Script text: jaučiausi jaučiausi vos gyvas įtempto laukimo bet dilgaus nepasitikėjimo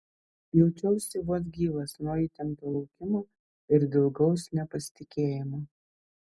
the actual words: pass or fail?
fail